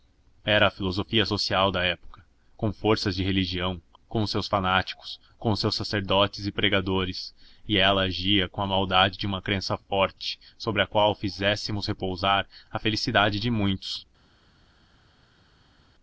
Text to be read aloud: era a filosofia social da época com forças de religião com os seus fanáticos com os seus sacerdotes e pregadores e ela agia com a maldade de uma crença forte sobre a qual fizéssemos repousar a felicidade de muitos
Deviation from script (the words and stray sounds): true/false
false